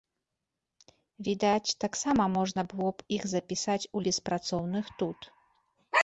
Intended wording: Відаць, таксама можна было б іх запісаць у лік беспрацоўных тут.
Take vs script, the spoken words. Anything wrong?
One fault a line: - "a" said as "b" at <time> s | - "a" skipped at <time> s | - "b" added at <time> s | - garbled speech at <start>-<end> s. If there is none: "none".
- "лік" skipped at 4.0 s